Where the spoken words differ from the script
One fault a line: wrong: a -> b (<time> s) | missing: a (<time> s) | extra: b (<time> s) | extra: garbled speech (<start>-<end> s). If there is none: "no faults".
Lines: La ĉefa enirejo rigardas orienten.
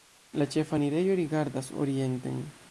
no faults